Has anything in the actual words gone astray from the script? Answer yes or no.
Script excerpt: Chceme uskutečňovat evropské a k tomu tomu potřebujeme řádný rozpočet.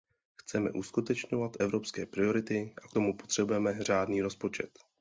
yes